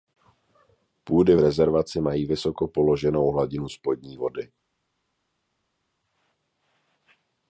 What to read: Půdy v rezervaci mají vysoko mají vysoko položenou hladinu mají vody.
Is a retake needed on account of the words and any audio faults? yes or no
yes